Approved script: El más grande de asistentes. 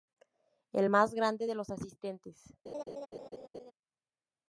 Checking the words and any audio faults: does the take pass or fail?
fail